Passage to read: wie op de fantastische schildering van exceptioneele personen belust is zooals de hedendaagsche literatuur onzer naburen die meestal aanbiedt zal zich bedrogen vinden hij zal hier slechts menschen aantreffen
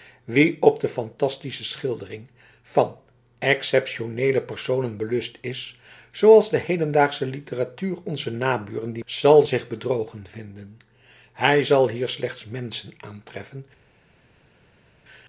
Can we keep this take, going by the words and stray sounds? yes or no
no